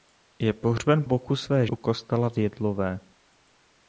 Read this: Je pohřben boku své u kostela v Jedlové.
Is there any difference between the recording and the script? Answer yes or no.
no